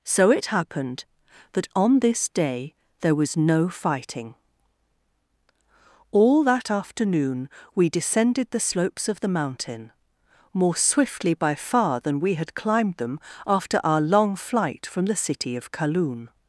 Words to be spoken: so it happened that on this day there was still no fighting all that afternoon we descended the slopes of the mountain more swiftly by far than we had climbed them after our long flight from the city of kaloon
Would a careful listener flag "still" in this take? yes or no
yes